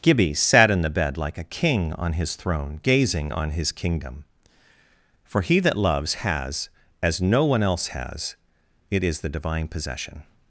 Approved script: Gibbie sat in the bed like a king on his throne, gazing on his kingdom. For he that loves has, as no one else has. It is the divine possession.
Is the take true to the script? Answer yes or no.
yes